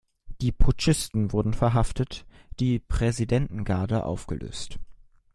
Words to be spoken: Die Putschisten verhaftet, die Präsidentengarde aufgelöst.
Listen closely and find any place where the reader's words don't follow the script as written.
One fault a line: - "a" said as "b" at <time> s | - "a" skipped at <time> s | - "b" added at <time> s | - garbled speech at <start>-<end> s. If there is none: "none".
- "wurden" added at 1.3 s